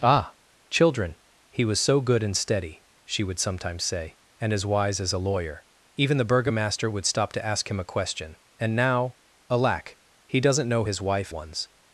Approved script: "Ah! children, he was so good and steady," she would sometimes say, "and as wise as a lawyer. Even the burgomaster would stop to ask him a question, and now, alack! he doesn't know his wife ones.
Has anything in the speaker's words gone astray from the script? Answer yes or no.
no